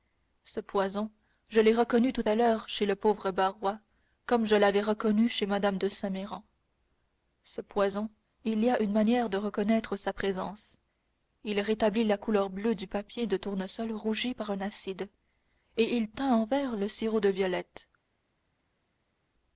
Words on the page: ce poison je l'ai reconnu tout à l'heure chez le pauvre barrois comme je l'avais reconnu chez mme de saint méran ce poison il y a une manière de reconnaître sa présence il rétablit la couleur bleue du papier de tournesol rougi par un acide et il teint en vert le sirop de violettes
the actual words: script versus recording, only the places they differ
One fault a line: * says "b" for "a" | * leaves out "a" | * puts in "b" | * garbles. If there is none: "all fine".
all fine